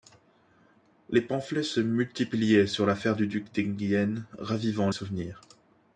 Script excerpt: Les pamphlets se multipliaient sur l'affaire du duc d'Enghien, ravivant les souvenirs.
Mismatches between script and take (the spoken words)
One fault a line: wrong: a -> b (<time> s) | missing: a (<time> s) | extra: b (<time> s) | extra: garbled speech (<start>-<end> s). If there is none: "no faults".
missing: les (4.9 s)